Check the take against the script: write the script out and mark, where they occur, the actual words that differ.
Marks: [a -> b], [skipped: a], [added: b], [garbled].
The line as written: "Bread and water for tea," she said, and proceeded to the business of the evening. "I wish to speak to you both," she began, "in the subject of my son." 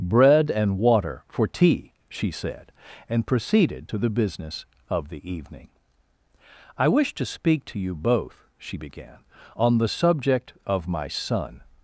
"Bread and water for tea," she said, and proceeded to the business of the evening. "I wish to speak to you both," she began, ["in -> on] the subject of my son."